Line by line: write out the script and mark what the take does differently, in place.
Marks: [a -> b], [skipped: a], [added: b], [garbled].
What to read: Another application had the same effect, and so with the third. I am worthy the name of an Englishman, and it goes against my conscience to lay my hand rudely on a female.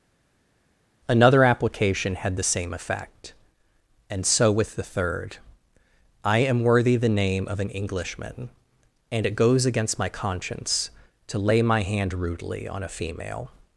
Another application had the same effect, and so with the third. I am worthy the name of an Englishman, and it goes against my conscience to lay my hand rudely on a female.